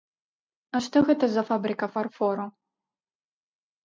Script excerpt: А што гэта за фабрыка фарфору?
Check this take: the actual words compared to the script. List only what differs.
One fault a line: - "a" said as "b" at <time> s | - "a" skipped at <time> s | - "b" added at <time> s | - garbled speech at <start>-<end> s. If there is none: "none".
none